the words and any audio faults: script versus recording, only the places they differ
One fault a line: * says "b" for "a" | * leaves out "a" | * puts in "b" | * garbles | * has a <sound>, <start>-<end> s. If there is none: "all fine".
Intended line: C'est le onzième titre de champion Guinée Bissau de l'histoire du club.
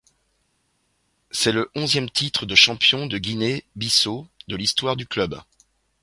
* puts in "de"